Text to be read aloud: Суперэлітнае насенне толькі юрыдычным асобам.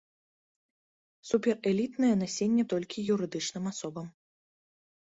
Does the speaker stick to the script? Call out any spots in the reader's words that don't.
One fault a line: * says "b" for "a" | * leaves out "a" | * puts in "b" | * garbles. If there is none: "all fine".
all fine